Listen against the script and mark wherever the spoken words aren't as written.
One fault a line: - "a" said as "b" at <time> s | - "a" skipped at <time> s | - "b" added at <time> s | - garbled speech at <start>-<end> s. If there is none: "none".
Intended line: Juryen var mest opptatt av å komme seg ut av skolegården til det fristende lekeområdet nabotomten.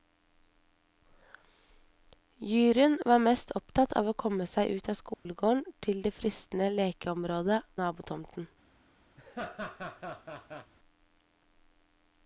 none